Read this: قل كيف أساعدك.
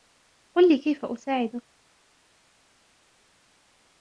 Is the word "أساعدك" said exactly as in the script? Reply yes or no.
yes